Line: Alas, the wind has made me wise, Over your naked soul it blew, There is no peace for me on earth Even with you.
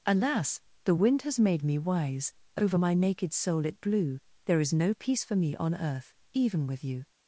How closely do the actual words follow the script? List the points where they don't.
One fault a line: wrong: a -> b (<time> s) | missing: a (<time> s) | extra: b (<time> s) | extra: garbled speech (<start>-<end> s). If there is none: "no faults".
wrong: your -> my (2.8 s)